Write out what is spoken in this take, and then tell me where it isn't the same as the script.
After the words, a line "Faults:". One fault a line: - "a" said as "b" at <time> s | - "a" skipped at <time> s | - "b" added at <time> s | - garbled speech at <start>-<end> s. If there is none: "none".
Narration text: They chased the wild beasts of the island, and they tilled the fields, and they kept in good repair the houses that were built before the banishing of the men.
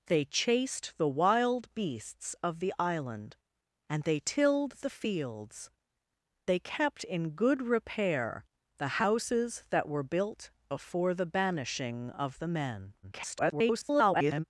They chased the wild beasts of the island, and they tilled the fields, they kept in good repair the houses that were built before the banishing of the men. [garbled]
Faults:
- "and" skipped at 5.7 s
- garbled speech at 13.0-14.4 s